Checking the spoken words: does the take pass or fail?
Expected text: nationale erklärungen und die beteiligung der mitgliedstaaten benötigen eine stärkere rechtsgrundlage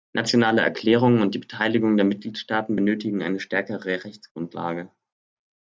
pass